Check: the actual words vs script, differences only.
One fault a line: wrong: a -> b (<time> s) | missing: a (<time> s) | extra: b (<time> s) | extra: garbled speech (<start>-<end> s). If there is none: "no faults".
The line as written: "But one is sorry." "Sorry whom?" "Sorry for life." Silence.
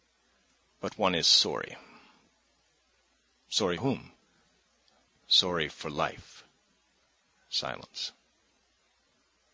no faults